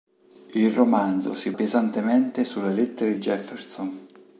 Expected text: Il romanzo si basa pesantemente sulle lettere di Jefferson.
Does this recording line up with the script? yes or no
no